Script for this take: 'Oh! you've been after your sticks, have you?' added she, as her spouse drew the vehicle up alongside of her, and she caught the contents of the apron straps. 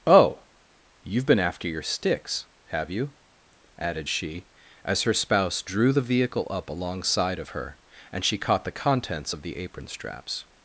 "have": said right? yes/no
yes